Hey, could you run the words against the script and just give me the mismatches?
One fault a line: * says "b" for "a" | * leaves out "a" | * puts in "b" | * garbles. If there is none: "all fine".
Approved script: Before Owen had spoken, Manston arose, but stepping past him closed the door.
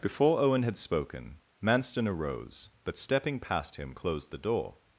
all fine